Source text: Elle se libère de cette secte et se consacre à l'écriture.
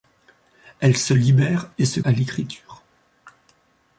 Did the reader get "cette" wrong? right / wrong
wrong